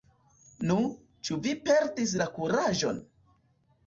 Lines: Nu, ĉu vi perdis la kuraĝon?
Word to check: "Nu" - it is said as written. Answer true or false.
true